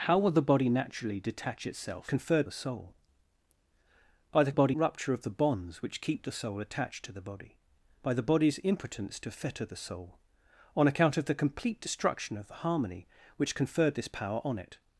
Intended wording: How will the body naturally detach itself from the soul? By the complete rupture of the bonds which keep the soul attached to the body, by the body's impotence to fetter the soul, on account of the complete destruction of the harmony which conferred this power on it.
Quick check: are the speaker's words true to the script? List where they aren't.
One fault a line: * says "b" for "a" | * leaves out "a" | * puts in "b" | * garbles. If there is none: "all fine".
* says "conferred" for "from"
* says "body" for "complete"